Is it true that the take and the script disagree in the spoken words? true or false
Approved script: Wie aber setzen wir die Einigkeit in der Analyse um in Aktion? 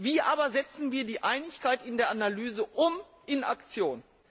false